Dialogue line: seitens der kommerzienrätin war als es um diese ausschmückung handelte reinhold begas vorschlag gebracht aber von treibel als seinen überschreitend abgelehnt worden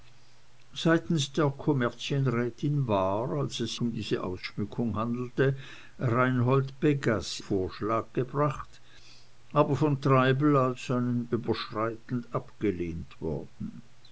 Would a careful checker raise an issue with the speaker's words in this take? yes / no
no